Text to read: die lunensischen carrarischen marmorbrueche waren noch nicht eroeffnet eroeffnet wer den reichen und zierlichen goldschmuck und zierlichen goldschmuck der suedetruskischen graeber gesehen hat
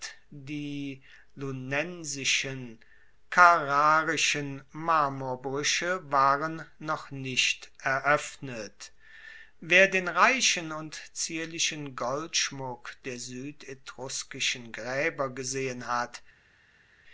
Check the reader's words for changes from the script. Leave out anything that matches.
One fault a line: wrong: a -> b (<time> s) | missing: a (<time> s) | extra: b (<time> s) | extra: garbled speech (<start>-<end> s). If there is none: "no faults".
missing: eroeffnet (8.9 s)
missing: und zierlichen goldschmuck (13.0 s)